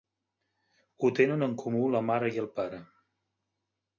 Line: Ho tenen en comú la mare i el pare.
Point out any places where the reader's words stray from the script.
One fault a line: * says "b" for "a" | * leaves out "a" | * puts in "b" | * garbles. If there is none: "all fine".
all fine